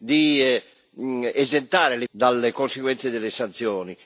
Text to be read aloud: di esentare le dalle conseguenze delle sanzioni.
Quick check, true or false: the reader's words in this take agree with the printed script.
true